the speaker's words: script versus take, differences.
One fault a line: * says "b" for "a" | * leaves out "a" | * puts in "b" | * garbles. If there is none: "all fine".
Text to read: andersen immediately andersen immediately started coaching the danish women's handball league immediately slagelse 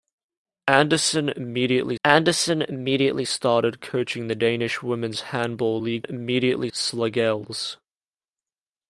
all fine